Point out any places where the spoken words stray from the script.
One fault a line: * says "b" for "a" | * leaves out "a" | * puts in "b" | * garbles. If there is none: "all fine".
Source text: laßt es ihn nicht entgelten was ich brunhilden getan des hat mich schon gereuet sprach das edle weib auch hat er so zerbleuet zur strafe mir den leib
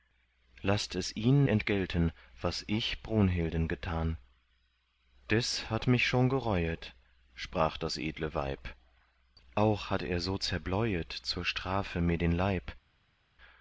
* leaves out "nicht"